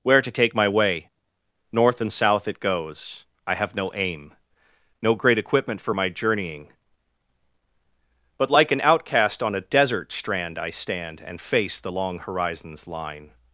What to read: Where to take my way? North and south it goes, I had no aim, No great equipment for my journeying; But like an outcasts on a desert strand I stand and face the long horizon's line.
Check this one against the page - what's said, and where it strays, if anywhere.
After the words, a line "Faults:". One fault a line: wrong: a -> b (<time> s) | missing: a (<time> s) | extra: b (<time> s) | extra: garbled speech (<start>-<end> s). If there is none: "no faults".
Where to take my way? North and south it goes, I have no aim, No great equipment for my journeying; But like an outcast on a desert strand I stand and face the long horizon's line.
Faults:
wrong: had -> have (3.5 s)
wrong: outcasts -> outcast (8.8 s)